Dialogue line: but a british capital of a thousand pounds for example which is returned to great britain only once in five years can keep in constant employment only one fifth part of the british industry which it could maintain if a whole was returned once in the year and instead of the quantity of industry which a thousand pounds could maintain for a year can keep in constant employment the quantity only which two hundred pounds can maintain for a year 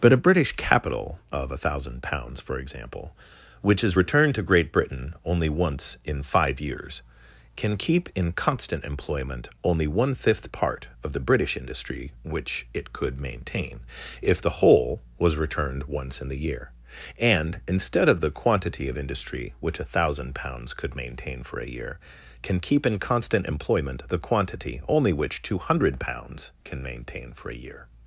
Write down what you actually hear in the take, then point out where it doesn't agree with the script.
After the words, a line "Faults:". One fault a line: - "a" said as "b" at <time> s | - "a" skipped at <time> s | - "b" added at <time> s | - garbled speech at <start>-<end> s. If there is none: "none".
but a british capital of a thousand pounds for example which is returned to great britain only once in five years can keep in constant employment only one fifth part of the british industry which it could maintain if the whole was returned once in the year and instead of the quantity of industry which a thousand pounds could maintain for a year can keep in constant employment the quantity only which two hundred pounds can maintain for a year
Faults:
- "a" said as "the" at 14.4 s